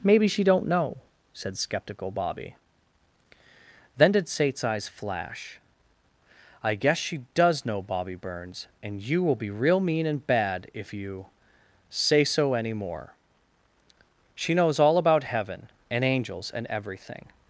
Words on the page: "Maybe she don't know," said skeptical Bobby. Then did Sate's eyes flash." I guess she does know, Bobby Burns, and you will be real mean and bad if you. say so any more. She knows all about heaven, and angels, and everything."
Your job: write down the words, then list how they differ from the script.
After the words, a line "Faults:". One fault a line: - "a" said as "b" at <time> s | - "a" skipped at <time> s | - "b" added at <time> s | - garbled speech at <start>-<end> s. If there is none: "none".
"Maybe she don't know," said skeptical Bobby. Then did Sate's eyes flash." I guess she does know, Bobby Burns, and you will be real mean and bad if you. say so any more. She knows all about heaven, and angels, and everything."
Faults:
none